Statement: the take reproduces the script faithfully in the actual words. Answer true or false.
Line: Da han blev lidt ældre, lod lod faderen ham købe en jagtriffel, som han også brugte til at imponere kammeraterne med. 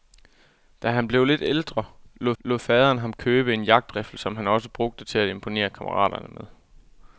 true